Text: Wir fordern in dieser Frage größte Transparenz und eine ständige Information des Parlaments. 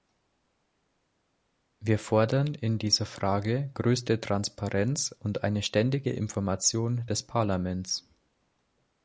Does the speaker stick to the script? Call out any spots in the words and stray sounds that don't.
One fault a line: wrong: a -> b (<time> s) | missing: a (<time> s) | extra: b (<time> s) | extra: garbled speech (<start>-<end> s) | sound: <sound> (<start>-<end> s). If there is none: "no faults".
no faults